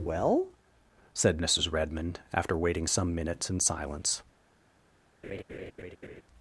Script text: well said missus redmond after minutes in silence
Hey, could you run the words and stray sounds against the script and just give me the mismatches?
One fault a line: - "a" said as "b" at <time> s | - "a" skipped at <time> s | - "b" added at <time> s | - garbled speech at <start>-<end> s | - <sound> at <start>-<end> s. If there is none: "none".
- "waiting some" added at 2.6 s
- laugh at 5.2-6.2 s